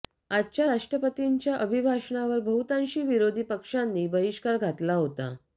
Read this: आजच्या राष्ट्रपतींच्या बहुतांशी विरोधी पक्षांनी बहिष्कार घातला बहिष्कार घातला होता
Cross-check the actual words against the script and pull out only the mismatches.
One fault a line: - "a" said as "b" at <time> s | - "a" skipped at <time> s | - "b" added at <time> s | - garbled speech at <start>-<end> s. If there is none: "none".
- "अभिभाषणावर" added at 1.5 s
- "बहिष्कार घातला" skipped at 4.9 s